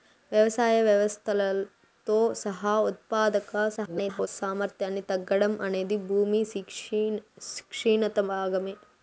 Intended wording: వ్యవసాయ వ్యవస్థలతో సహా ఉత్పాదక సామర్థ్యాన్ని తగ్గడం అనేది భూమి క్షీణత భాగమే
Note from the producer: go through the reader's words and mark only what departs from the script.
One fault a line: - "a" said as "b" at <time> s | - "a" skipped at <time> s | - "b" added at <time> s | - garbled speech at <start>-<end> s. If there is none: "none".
- garbled speech at 3.8-4.3 s